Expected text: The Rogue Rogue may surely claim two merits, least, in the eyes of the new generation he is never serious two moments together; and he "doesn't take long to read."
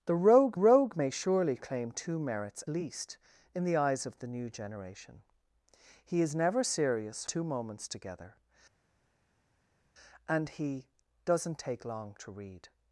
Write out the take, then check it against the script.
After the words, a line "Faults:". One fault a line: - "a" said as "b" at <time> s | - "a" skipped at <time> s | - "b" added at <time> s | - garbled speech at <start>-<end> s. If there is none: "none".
The Rogue Rogue may surely claim two merits, least, in the eyes of the new generation he is never serious two moments together; and he "doesn't take long to read."
Faults:
none